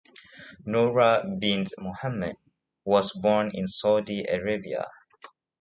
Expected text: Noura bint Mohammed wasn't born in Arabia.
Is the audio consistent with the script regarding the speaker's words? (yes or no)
no